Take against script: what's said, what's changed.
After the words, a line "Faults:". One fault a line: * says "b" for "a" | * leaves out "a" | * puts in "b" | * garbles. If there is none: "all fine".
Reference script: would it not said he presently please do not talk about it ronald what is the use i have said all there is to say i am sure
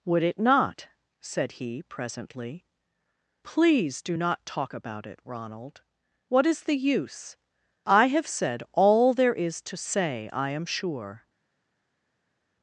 would it not said he presently please do not talk about it ronald what is the use i have said all there is to say i am sure
Faults:
all fine